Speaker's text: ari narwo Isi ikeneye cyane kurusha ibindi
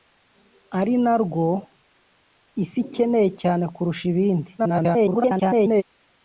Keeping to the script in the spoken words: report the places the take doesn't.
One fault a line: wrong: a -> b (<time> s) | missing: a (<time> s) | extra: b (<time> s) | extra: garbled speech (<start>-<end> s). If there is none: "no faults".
extra: garbled speech (4.6-5.8 s)